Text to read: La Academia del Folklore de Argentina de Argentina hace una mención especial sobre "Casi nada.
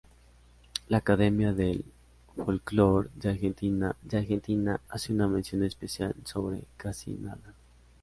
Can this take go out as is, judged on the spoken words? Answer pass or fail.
pass